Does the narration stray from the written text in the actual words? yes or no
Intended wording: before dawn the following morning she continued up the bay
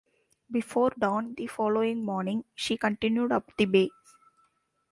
no